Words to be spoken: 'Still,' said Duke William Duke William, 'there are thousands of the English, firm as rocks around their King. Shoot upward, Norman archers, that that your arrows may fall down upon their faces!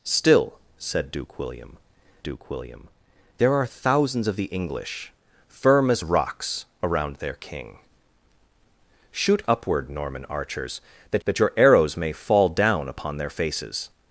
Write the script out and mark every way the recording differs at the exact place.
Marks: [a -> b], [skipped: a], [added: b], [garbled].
'Still,' said Duke William Duke William, 'there are thousands of the English, firm as rocks around their King. Shoot upward, Norman archers, that that your arrows may fall down upon their faces!